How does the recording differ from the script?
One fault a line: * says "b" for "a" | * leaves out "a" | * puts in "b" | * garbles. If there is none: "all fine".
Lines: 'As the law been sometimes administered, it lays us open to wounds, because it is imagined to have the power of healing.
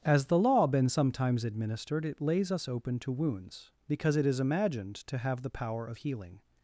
all fine